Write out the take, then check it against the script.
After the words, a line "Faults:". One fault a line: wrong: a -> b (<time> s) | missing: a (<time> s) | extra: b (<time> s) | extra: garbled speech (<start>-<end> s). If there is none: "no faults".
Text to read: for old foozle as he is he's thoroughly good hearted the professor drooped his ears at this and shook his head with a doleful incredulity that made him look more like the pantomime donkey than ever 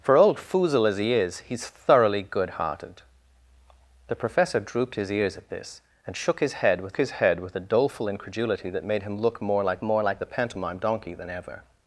for old foozle as he is he's thoroughly good hearted the professor drooped his ears at this and shook his head with his head with a doleful incredulity that made him look more like more like the pantomime donkey than ever
Faults:
extra: his head with (7.0 s)
extra: more like (9.8 s)